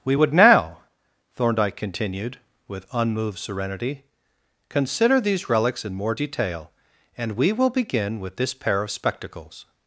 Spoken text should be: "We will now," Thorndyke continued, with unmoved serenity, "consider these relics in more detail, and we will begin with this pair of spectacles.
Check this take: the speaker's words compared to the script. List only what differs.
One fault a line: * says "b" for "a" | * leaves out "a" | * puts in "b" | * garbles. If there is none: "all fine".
* says "would" for "will"